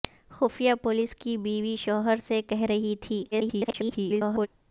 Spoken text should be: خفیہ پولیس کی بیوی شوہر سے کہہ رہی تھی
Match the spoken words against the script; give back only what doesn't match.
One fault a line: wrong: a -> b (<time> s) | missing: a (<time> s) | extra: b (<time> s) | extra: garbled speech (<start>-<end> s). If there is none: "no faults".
extra: garbled speech (3.3-4.5 s)